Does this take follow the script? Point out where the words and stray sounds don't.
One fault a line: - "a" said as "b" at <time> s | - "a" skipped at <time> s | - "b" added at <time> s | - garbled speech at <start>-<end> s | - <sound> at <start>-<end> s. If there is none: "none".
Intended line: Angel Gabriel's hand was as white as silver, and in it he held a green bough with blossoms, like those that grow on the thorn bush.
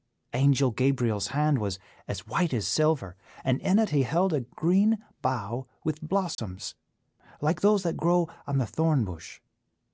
- dropout at 6.3-6.4 s